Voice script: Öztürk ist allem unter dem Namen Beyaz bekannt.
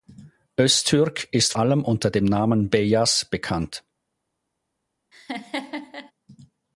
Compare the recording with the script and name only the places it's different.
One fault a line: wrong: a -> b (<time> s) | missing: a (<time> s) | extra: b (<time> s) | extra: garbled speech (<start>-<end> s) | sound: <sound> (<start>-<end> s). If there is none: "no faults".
sound: laugh (5.1-6.1 s)